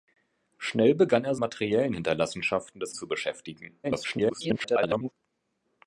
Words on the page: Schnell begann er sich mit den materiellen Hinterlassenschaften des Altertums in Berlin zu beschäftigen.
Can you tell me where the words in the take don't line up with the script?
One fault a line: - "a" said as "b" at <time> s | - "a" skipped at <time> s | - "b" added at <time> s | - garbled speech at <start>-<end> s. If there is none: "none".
- "sich mit den" skipped at 1.4 s
- "Altertums in Berlin" skipped at 2.9 s
- garbled speech at 3.8-5.1 s